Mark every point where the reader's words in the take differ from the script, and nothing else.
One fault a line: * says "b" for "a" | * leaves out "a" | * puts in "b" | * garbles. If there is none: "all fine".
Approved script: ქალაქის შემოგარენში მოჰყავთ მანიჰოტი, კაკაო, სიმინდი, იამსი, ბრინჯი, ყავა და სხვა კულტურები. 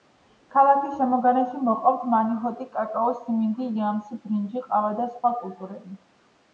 all fine